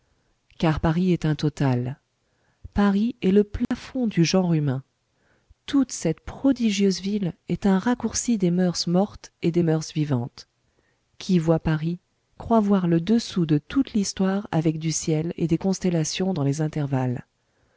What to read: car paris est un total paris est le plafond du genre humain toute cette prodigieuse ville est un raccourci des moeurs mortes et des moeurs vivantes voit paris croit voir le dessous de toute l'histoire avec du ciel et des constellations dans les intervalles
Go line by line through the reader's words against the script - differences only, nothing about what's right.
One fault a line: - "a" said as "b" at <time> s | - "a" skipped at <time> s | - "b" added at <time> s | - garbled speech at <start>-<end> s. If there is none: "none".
- "qui" added at 11.2 s